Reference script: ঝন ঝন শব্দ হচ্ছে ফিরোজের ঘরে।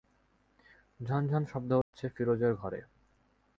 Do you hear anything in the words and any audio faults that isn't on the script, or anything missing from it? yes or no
yes